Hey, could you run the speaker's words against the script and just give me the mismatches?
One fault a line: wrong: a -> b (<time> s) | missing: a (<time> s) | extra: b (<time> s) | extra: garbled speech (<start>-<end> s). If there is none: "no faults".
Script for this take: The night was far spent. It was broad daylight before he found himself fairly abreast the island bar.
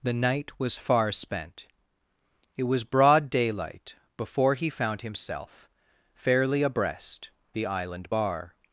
no faults